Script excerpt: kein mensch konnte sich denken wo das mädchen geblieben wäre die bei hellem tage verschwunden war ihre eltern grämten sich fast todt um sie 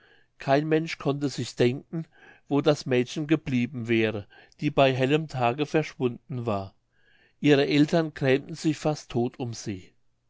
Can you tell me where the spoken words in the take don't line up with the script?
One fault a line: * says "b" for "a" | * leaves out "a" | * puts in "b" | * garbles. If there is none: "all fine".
all fine